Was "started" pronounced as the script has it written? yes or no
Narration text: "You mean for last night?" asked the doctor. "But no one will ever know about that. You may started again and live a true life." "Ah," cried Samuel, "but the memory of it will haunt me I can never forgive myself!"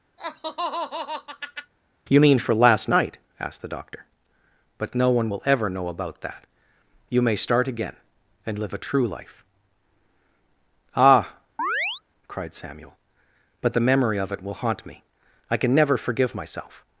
no